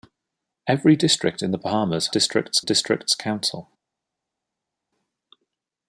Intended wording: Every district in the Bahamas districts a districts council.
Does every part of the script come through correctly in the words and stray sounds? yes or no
yes